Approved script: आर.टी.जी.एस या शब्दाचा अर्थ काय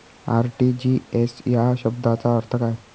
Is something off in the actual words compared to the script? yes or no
no